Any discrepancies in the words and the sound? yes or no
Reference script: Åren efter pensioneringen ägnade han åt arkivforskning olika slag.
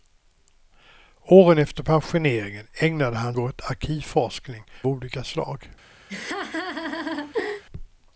yes